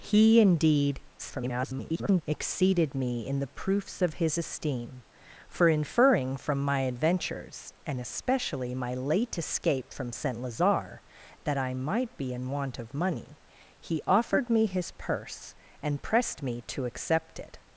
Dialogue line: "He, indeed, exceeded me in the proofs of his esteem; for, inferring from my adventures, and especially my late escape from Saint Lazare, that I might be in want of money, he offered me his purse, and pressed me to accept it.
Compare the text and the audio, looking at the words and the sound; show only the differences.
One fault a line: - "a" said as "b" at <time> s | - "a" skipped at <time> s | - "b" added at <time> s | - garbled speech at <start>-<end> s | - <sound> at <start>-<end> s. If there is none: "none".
- garbled speech at 1.2-2.2 s